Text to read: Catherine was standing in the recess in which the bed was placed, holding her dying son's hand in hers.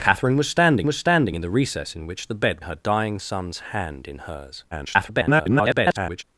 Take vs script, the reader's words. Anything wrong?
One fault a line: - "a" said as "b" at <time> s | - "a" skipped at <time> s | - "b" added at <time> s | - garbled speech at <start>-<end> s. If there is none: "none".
- "was standing" added at 0.8 s
- "was placed holding" skipped at 2.6 s
- garbled speech at 4.7-6.2 s